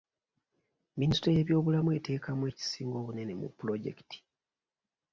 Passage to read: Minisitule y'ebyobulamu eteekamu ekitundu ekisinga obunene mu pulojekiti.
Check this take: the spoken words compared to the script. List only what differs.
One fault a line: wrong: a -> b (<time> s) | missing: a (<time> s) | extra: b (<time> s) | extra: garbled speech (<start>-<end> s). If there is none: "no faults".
missing: ekitundu (2.4 s)